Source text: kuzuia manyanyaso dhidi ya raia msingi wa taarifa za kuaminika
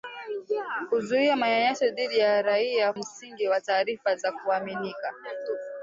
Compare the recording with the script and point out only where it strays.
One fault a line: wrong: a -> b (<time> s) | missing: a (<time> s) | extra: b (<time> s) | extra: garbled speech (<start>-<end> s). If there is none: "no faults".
no faults